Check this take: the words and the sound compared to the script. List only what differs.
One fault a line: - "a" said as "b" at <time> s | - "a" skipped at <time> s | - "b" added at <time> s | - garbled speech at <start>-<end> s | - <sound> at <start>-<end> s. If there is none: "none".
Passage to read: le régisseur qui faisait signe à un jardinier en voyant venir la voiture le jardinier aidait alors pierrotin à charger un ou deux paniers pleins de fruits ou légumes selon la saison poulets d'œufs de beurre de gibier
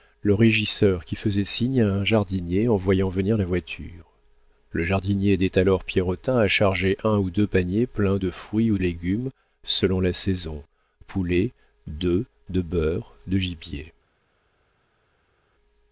none